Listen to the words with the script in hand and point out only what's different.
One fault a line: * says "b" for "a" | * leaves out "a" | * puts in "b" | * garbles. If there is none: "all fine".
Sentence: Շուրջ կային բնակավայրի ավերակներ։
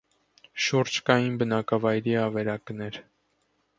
all fine